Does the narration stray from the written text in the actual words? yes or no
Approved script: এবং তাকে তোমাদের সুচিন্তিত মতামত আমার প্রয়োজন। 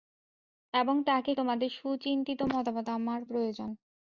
no